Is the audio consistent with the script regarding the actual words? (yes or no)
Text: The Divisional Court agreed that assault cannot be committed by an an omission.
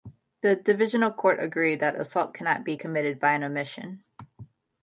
no